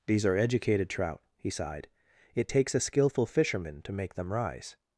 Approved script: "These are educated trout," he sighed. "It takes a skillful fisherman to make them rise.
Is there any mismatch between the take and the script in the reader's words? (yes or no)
no